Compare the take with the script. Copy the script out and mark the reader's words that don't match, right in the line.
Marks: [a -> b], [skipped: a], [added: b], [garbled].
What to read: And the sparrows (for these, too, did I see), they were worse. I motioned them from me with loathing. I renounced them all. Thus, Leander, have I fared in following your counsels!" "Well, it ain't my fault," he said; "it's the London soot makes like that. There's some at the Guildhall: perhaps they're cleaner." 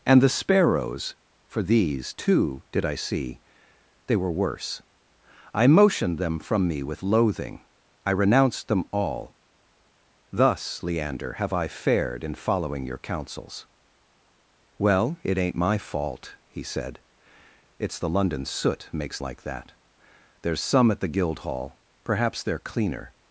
And the sparrows (for these, too, did I see), they were worse. I motioned them from me with loathing. I renounced them all. Thus, Leander, have I fared in following your counsels!" "Well, it ain't my fault," he said; "it's the London soot makes like that. There's some at the Guildhall: perhaps they're cleaner."